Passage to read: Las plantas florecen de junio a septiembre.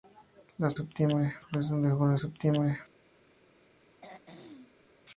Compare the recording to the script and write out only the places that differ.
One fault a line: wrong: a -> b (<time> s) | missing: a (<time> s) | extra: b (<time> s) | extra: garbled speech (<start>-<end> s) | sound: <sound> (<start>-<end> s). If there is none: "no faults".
wrong: plantas -> septiembre (0.7 s)
sound: throat clearing (4.0-4.9 s)